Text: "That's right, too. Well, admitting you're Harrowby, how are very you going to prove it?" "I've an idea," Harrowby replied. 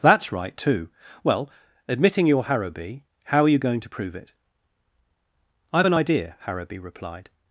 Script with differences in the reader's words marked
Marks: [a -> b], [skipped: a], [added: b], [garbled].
"That's right, too. Well, admitting you're Harrowby, how are [skipped: very] you going to prove it?" "I've an idea," Harrowby replied.